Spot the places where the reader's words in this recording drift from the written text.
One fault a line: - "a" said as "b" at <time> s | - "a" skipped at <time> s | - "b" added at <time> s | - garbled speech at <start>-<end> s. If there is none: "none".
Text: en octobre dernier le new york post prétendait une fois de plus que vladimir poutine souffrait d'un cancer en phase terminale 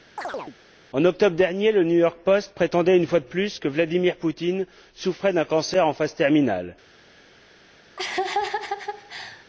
none